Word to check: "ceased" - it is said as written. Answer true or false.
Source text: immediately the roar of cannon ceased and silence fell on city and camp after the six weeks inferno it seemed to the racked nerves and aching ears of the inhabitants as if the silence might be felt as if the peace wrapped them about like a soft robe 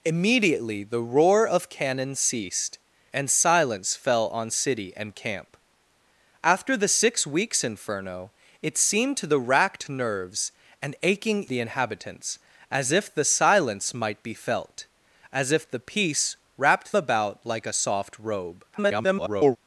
true